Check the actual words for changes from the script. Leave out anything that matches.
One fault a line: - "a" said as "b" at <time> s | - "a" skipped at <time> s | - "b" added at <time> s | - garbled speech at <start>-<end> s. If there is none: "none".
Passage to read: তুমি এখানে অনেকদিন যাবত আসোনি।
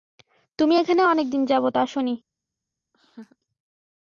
none